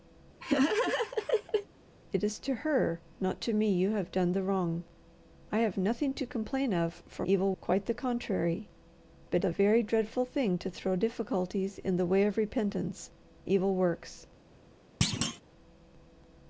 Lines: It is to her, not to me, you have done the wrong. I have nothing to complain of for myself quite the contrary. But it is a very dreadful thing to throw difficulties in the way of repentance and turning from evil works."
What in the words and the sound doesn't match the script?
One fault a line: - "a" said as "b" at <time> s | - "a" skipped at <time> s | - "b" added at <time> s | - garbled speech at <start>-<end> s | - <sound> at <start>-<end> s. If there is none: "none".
- laugh at 0.4-1.7 s
- "myself" said as "evil" at 7.3 s
- "it is" skipped at 9.4 s
- "and turning from" skipped at 13.1 s
- thud at 15.0-15.4 s